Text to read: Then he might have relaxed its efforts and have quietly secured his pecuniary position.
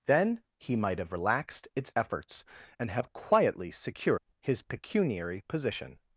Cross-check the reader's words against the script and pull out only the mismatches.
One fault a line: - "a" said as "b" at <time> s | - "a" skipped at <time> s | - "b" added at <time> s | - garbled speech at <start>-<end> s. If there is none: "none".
none